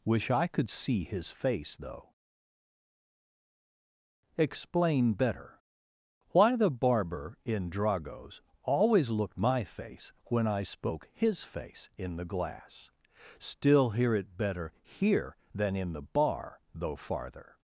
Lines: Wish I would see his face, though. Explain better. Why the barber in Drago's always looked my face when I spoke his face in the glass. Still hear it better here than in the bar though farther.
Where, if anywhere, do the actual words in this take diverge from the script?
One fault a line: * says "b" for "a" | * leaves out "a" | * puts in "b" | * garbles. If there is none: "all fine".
* says "could" for "would"